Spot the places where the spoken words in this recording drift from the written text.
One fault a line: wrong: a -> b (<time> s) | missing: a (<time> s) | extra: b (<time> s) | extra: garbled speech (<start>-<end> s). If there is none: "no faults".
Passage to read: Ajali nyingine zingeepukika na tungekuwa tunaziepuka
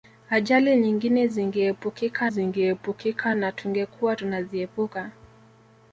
extra: zingeepukika (2.3 s)